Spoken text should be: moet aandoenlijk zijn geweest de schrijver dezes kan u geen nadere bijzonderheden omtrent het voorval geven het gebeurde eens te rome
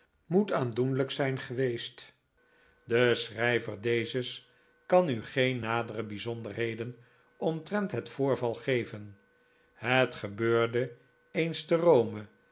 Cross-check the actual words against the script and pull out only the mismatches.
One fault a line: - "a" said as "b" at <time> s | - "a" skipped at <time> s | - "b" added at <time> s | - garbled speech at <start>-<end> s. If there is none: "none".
none